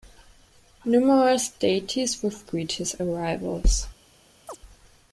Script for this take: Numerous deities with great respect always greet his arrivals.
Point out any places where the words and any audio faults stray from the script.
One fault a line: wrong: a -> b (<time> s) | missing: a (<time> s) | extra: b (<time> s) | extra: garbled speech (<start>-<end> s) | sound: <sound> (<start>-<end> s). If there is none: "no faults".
missing: great respect always (2.5 s)
sound: chirp (4.5-4.6 s)